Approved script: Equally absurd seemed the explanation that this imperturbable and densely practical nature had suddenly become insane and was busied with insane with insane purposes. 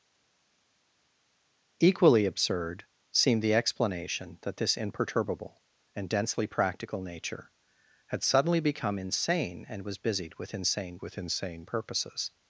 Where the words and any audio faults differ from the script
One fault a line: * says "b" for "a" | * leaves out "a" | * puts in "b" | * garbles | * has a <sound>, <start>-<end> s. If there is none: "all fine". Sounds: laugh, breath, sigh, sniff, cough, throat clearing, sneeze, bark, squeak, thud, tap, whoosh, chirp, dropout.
all fine